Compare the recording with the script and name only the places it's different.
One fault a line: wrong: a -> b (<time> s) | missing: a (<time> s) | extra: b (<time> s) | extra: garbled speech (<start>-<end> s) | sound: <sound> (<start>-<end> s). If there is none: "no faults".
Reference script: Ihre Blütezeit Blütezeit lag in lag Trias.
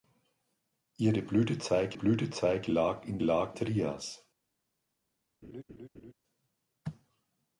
sound: laugh (5.4-6.1 s)